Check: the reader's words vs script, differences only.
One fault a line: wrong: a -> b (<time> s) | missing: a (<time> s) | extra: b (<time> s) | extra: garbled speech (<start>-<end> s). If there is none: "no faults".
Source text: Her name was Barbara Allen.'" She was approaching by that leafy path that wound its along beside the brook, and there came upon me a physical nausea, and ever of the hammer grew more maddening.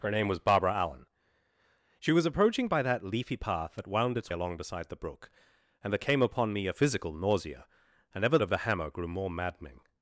no faults